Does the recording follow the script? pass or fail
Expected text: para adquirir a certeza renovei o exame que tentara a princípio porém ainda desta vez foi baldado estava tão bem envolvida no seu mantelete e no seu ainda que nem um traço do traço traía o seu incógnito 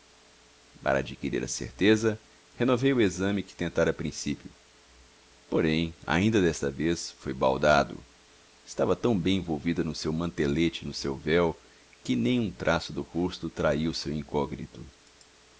fail